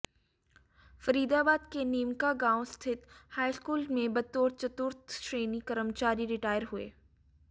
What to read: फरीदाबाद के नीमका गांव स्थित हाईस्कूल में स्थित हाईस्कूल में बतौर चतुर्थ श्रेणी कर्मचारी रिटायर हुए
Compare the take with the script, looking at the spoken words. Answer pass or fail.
fail